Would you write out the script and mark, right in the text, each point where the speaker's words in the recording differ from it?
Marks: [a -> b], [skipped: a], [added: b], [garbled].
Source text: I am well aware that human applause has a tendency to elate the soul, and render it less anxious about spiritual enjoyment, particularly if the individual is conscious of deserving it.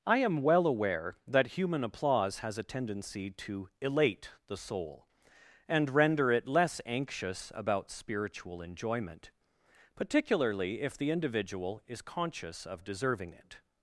I am well aware that human applause has a tendency to elate the soul, and render it less anxious about spiritual enjoyment, particularly if the individual is conscious of deserving it.